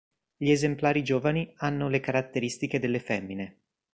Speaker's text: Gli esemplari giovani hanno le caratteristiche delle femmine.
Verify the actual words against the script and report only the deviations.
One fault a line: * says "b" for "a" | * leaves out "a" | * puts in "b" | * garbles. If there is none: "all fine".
all fine